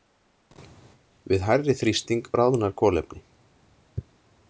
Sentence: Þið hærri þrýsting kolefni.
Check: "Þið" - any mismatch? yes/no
yes